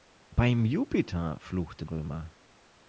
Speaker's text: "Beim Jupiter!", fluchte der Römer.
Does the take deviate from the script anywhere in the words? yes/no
yes